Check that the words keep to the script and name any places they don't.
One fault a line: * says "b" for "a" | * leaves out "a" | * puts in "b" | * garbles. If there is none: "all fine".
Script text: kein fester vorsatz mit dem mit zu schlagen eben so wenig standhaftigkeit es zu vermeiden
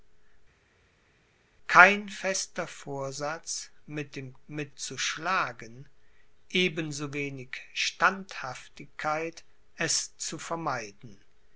all fine